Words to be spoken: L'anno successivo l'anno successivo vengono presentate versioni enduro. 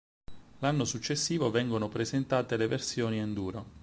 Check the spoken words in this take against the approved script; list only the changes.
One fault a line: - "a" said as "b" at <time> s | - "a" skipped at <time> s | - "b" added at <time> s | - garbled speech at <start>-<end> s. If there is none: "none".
- "l'anno successivo" skipped at 1.5 s
- "le" added at 2.6 s